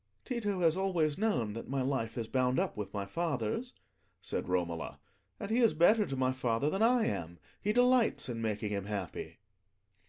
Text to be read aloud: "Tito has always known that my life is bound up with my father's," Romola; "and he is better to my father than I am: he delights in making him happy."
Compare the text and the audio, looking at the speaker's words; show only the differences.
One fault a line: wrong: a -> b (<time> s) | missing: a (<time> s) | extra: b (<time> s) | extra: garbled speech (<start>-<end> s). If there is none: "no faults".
extra: said (4.2 s)